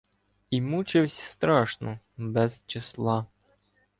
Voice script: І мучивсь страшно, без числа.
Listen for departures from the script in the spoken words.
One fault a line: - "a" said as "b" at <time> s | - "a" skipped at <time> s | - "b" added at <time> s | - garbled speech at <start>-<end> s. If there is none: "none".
none